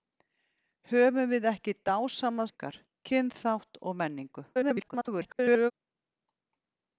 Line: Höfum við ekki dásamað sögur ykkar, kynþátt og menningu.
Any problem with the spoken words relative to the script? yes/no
yes